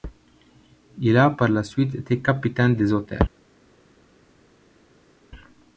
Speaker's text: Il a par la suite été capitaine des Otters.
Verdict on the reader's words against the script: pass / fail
pass